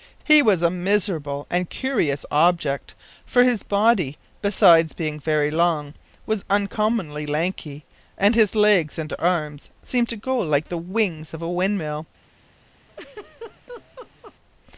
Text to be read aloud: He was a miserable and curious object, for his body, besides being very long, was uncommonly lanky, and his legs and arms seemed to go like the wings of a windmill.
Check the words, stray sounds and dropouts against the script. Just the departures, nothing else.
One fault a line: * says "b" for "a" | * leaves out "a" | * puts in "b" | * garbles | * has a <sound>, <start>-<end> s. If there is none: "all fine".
* has a laugh, 12.9-14.4 s